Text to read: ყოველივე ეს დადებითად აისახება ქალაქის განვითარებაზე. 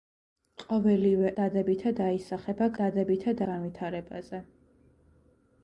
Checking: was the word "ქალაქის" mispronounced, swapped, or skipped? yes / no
yes